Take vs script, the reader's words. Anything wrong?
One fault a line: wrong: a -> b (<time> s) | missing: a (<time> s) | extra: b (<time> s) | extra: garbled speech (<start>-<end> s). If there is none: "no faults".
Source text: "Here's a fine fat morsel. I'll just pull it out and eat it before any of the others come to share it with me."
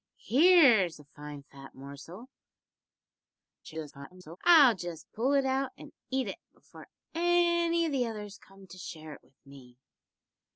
extra: garbled speech (3.6-4.4 s)